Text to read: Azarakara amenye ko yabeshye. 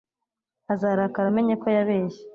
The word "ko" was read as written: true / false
true